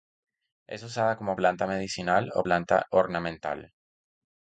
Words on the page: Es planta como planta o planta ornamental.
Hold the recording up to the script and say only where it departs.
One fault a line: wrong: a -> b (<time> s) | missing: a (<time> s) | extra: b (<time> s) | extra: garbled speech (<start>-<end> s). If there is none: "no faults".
wrong: planta -> usada (0.8 s)
extra: medicinal (1.7 s)